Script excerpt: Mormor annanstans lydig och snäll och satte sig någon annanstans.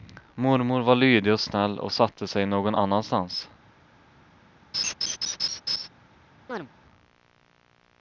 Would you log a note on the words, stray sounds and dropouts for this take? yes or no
yes